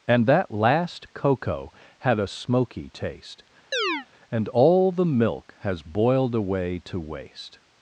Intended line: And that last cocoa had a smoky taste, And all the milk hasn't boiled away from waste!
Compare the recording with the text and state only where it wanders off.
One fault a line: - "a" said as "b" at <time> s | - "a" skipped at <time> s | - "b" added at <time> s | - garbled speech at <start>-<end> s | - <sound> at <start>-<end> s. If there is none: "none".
- chirp at 3.7-4.1 s
- "hasn't" said as "has" at 5.6 s
- "from" said as "to" at 6.8 s